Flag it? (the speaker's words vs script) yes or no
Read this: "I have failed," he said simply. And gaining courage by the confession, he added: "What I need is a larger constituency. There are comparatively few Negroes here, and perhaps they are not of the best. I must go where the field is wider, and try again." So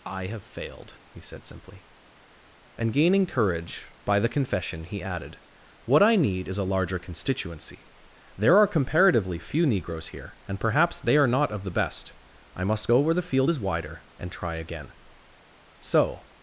no